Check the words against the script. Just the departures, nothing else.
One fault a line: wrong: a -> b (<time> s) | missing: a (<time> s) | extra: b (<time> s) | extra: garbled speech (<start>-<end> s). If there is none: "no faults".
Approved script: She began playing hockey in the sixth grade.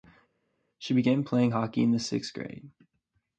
no faults